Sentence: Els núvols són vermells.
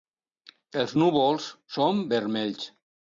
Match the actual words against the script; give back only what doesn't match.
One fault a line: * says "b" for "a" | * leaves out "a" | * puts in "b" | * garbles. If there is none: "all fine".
all fine